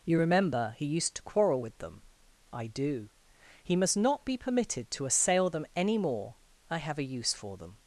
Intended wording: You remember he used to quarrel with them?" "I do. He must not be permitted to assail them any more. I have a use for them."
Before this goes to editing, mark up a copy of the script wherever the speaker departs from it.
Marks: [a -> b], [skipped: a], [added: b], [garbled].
You remember he used to quarrel with them?" "I do. He must not be permitted to assail them any more. I have a use for them."